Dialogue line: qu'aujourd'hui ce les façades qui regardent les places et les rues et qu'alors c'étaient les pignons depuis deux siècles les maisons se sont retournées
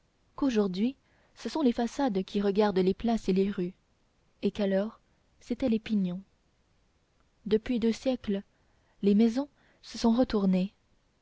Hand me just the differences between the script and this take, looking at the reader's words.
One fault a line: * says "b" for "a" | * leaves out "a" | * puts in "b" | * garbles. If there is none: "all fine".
* puts in "sont"